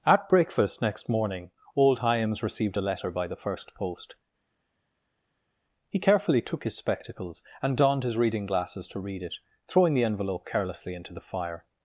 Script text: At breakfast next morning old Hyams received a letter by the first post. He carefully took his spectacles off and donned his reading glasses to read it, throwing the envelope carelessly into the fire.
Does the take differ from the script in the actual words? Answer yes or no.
yes